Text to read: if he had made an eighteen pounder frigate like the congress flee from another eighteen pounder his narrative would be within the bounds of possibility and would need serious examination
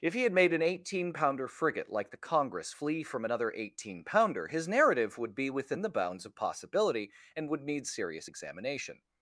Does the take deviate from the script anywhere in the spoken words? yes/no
no